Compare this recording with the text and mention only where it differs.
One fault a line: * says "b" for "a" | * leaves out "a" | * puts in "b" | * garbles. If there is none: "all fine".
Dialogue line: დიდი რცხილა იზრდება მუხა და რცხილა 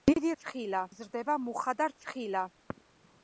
all fine